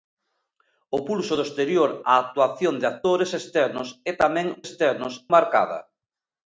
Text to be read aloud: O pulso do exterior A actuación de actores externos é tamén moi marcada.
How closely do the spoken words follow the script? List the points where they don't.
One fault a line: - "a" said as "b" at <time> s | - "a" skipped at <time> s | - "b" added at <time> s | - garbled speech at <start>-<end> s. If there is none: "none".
- "moi" said as "externos" at 4.6 s